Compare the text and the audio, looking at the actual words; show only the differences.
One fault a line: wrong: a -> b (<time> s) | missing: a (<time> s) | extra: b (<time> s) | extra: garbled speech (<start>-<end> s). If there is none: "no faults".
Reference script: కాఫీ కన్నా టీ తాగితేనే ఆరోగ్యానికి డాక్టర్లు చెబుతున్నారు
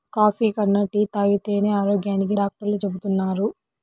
no faults